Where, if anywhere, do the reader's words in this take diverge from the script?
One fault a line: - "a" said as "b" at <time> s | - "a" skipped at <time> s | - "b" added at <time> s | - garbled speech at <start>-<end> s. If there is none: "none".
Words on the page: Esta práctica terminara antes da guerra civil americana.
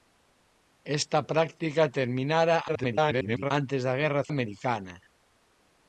- garbled speech at 2.7-3.5 s
- "civil" skipped at 4.2 s